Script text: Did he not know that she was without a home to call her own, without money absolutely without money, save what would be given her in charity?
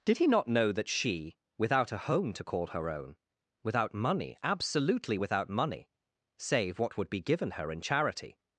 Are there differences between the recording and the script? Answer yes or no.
yes